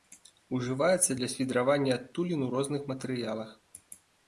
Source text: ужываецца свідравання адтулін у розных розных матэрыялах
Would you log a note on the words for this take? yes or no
yes